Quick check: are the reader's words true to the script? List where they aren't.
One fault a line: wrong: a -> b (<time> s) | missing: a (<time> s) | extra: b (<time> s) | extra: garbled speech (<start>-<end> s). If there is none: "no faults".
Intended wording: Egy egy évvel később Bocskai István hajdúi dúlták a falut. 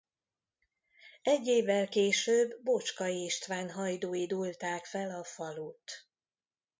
missing: egy (1.5 s)
extra: fel (4.8 s)